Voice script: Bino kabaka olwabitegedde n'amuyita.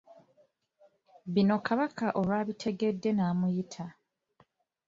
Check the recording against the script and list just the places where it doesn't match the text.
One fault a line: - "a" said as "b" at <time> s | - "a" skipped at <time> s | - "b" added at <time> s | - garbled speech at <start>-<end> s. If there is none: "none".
none